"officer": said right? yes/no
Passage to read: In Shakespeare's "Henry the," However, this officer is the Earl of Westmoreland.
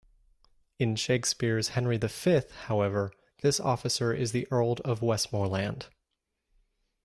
yes